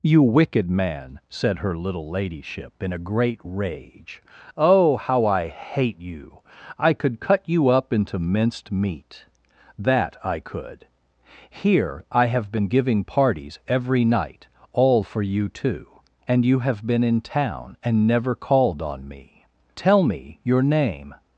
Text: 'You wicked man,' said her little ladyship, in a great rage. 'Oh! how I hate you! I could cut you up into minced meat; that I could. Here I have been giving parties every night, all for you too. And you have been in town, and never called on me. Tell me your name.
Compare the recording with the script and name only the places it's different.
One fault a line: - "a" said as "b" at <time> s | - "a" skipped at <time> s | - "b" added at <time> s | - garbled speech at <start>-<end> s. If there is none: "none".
none